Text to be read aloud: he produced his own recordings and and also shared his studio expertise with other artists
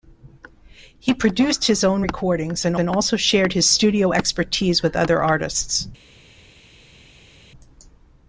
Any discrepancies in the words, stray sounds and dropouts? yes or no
no